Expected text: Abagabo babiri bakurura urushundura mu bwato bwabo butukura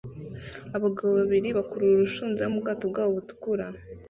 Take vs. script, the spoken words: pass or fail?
pass